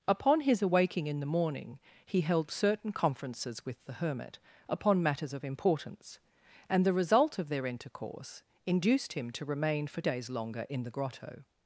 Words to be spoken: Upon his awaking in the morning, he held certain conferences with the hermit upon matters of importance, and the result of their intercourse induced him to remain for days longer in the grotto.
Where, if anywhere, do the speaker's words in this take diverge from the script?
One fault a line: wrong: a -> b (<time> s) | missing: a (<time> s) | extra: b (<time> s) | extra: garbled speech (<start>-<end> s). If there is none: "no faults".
no faults